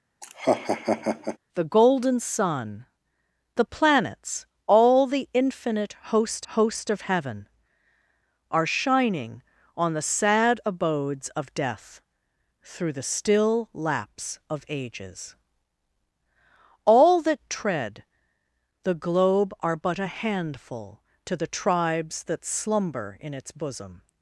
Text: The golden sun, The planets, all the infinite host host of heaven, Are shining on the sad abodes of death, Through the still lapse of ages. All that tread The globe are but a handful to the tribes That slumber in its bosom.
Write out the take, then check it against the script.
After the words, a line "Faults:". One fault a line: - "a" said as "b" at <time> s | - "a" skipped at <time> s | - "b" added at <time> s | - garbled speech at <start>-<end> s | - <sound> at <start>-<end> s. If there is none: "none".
The golden sun, The planets, all the infinite host host of heaven, Are shining on the sad abodes of death, Through the still lapse of ages. All that tread The globe are but a handful to the tribes That slumber in its bosom.
Faults:
- laugh at 0.2-1.4 s